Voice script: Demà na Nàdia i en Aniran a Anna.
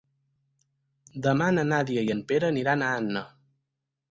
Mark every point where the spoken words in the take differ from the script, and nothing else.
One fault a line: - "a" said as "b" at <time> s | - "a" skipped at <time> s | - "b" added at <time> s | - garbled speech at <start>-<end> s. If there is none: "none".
- "Pere" added at 2.3 s